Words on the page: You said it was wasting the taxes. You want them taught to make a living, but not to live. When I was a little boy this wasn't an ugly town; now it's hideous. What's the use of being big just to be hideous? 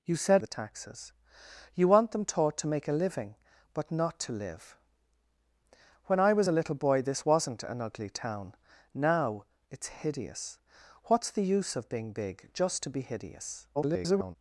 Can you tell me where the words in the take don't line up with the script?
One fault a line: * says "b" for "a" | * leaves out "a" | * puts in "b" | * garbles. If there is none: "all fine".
* leaves out "it was wasting"
* garbles